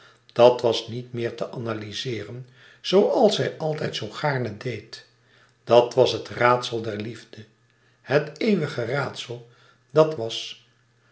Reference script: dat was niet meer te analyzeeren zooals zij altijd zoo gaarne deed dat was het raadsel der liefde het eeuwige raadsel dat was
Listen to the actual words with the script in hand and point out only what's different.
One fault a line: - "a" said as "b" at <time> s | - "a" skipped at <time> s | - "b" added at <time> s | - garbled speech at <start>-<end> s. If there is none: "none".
none